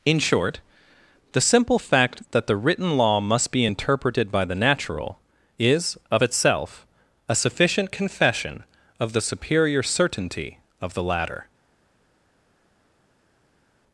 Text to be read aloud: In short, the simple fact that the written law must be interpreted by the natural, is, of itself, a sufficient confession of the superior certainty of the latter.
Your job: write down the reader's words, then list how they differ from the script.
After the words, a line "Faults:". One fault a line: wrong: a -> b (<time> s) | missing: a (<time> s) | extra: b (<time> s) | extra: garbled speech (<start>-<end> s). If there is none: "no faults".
In short, the simple fact that the written law must be interpreted by the natural, is, of itself, a sufficient confession of the superior certainty of the latter.
Faults:
no faults